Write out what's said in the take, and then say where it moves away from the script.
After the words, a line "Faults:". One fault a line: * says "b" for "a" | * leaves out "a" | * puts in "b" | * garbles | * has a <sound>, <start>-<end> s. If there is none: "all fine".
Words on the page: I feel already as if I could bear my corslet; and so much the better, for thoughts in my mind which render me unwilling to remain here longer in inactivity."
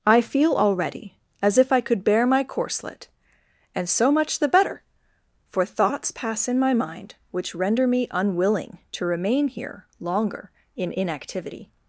I feel already as if I could bear my corslet; and so much the better, for thoughts pass in my mind which render me unwilling to remain here longer in inactivity."
Faults:
* puts in "pass"